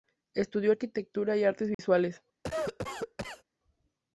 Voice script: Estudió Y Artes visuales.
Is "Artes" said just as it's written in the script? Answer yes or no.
yes